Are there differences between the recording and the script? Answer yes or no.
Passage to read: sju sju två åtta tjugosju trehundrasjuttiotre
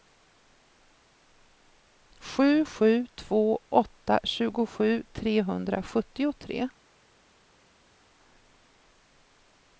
no